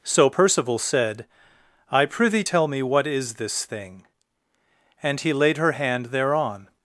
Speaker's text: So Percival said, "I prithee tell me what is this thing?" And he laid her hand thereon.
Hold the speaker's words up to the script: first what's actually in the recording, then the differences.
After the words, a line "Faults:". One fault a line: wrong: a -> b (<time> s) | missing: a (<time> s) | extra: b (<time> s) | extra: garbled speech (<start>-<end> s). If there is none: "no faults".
So Percival said, "I prithee tell me what is this thing?" And he laid her hand thereon.
Faults:
no faults